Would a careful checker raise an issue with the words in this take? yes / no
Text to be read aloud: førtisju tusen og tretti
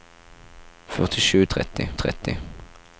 yes